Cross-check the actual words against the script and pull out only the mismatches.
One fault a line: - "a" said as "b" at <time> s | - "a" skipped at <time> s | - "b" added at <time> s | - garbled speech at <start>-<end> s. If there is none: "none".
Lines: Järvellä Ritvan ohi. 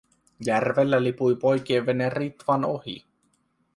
- "lipui poikien vene" added at 1.0 s